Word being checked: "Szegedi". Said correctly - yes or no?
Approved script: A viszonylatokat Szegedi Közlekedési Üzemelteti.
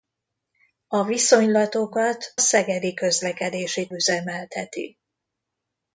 yes